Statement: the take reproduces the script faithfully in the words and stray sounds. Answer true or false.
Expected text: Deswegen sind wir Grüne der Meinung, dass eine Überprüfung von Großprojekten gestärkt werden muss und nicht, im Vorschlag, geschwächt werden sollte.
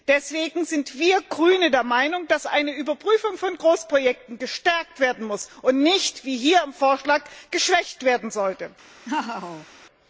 false